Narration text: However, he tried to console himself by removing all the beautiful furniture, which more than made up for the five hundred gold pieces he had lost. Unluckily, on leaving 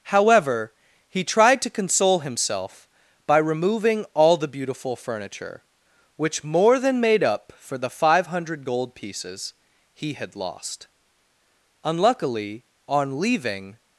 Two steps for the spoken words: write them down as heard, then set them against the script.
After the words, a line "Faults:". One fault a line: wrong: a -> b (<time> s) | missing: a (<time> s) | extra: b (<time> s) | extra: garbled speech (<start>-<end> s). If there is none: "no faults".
However, he tried to console himself by removing all the beautiful furniture, which more than made up for the five hundred gold pieces he had lost. Unluckily, on leaving
Faults:
no faults